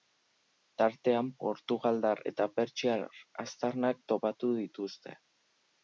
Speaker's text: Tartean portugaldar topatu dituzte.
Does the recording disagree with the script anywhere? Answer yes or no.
yes